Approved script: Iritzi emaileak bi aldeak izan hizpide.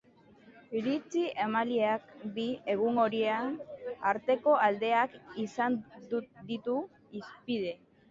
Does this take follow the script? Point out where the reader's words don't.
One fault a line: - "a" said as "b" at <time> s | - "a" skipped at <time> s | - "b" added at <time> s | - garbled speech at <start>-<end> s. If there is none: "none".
- "egun horien arteko" added at 2.8 s
- "ditu" added at 6.5 s